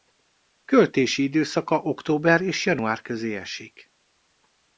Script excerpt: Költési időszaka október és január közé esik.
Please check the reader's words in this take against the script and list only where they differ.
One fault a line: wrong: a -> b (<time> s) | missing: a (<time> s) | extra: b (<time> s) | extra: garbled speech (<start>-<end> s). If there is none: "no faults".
no faults